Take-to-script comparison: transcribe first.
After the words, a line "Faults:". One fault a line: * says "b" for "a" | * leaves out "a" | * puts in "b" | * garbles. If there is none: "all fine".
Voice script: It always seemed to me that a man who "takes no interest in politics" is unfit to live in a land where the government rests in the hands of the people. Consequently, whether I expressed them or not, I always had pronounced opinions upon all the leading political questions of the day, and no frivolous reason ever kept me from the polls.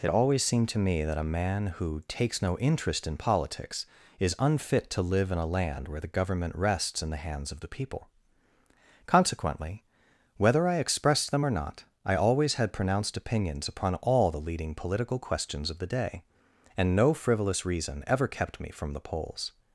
It always seemed to me that a man who "takes no interest in politics" is unfit to live in a land where the government rests in the hands of the people. Consequently, whether I expressed them or not, I always had pronounced opinions upon all the leading political questions of the day, and no frivolous reason ever kept me from the polls.
Faults:
all fine